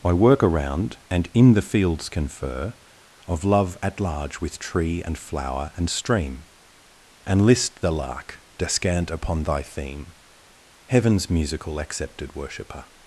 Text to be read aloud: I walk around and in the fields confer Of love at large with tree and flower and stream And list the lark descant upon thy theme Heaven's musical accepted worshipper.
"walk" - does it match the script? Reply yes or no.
no